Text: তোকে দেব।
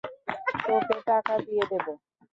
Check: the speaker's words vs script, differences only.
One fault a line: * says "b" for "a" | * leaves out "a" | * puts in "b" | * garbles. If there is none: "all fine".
* puts in "টাকা দিয়ে"